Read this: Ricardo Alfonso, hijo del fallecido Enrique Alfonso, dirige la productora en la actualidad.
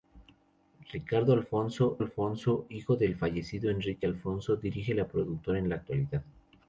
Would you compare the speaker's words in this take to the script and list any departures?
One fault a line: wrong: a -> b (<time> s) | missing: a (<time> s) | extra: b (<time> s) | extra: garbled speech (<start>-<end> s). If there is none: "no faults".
extra: Alfonso (2.0 s)